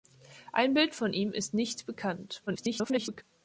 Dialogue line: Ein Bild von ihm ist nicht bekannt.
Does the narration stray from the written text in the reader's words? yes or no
yes